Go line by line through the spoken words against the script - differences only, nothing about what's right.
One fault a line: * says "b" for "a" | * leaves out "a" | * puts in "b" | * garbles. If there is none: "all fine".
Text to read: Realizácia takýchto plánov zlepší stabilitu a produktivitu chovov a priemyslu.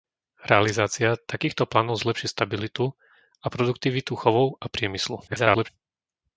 * garbles